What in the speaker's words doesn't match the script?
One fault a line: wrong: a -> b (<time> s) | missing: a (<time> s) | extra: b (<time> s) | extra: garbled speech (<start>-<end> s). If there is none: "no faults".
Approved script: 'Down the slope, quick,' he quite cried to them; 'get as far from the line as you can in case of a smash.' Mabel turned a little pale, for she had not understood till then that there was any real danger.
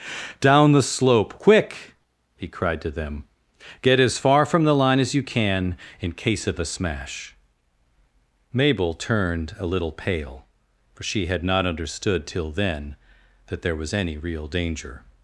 missing: quite (2.5 s)